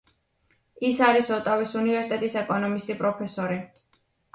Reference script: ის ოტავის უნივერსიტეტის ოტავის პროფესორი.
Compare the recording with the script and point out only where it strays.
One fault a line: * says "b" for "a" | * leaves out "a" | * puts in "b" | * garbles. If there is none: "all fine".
* puts in "არის"
* says "ეკონომისტი" for "ოტავის"